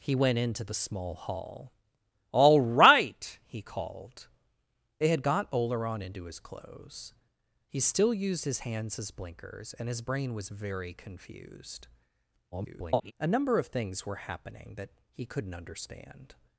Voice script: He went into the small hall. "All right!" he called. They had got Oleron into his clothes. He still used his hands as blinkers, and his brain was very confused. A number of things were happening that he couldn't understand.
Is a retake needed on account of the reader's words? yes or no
yes